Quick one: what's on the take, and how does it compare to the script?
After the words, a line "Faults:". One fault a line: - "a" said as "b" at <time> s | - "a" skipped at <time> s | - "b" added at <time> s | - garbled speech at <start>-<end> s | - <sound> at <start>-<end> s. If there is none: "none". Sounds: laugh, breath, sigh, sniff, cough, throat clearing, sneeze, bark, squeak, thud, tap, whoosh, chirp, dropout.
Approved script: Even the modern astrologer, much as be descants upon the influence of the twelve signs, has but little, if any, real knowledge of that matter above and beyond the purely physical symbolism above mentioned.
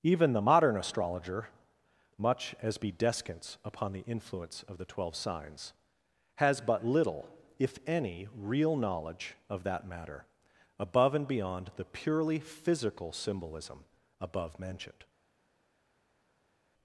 Even the modern astrologer, much as be descants upon the influence of the twelve signs, has but little, if any, real knowledge of that matter above and beyond the purely physical symbolism above mentioned.
Faults:
none